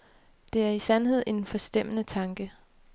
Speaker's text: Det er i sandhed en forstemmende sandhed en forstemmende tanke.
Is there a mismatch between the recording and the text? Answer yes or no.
yes